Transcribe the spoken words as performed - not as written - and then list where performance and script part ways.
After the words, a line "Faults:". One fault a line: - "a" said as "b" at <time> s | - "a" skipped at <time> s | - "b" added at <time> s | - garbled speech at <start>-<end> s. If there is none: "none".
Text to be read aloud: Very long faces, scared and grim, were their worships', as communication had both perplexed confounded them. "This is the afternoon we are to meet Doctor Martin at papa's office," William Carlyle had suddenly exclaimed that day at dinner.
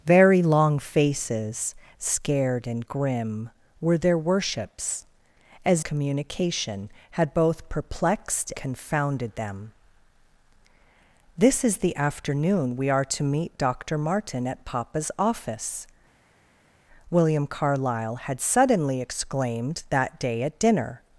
Very long faces, scared and grim, were their worships', as communication had both perplexed confounded them. "This is the afternoon we are to meet Doctor Martin at papa's office," William Carlyle had suddenly exclaimed that day at dinner.
Faults:
none